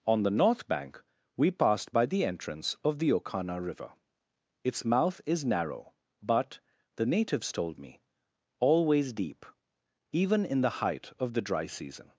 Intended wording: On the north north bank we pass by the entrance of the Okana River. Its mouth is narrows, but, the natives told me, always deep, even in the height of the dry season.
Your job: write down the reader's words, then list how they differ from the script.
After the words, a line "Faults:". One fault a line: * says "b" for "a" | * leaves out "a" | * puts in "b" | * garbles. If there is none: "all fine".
On the north bank we passed by the entrance of the Okana River. Its mouth is narrow, but, the natives told me, always deep, even in the height of the dry season.
Faults:
* leaves out "north"
* says "passed" for "pass"
* says "narrow" for "narrows"